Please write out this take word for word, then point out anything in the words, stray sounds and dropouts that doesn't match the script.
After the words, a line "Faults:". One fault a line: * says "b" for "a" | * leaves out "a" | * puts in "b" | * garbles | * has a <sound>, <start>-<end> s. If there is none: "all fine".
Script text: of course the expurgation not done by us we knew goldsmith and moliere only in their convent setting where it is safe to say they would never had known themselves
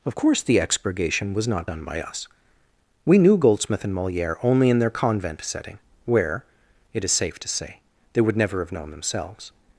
of course the expurgation was not done by us we knew goldsmith and moliere only in their convent setting where it is safe to say they would never have known themselves
Faults:
* puts in "was"
* says "have" for "had"